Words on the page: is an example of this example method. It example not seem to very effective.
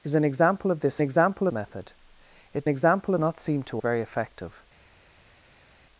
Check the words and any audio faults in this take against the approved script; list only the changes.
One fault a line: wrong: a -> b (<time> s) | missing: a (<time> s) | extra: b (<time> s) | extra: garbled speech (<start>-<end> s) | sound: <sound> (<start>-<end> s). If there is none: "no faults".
no faults